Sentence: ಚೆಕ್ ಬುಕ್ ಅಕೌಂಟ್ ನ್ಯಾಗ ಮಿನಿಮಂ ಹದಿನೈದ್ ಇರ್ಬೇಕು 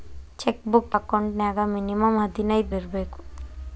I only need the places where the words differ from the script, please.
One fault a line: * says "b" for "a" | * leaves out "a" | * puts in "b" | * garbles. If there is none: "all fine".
all fine